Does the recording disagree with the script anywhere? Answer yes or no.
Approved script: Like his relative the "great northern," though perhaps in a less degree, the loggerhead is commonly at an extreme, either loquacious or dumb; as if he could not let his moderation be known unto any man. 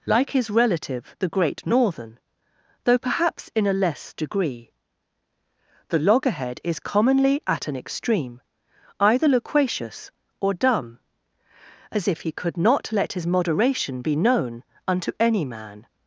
no